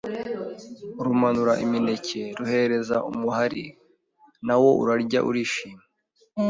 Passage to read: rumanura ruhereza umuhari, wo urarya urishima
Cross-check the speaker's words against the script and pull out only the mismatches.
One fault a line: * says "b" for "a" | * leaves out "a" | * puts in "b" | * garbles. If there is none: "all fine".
* puts in "imineke"
* puts in "na"